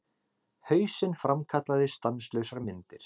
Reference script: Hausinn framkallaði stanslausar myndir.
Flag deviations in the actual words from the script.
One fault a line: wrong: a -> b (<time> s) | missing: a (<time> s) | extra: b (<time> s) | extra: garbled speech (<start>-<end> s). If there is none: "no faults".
no faults